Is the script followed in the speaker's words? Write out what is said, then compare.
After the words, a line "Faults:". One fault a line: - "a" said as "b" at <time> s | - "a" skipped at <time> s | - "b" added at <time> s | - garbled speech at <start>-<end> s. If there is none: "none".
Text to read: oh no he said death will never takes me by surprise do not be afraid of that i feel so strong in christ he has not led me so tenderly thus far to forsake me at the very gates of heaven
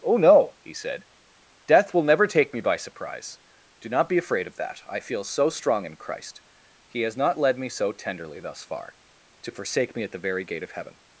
oh no he said death will never take me by surprise do not be afraid of that i feel so strong in christ he has not led me so tenderly thus far to forsake me at the very gate of heaven
Faults:
- "takes" said as "take" at 2.3 s
- "gates" said as "gate" at 10.4 s